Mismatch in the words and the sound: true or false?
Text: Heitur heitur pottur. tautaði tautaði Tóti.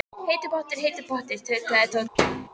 true